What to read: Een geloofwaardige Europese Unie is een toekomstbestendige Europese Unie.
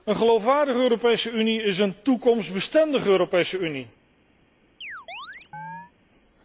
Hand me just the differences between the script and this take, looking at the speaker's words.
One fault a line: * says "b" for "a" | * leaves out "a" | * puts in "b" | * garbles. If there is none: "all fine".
all fine